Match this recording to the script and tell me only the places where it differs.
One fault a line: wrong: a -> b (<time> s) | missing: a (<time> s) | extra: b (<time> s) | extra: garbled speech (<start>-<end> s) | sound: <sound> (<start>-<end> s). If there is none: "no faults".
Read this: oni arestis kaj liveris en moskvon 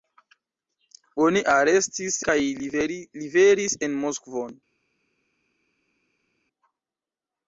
no faults